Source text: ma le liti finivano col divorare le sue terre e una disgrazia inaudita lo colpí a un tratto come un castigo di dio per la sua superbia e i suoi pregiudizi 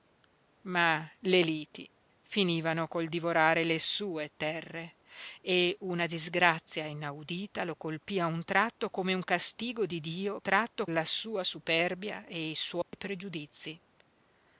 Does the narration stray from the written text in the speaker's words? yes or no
yes